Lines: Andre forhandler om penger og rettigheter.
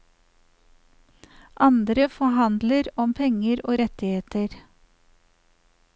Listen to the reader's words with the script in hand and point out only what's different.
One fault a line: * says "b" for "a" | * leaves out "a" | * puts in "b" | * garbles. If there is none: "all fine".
all fine